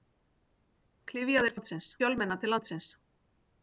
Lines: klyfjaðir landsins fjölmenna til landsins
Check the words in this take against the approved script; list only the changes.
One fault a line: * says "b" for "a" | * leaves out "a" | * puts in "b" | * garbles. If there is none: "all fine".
all fine